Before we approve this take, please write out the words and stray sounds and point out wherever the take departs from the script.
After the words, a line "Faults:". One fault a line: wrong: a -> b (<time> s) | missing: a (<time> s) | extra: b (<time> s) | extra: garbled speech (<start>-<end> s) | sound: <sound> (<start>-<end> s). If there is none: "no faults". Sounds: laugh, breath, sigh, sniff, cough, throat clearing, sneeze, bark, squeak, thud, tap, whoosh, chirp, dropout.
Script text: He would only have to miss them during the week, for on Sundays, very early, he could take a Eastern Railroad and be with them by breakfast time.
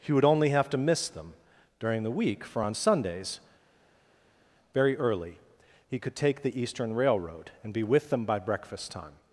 He would only have to miss them during the week, for on Sundays, very early, he could take the Eastern Railroad and be with them by breakfast time.
Faults:
wrong: a -> the (6.4 s)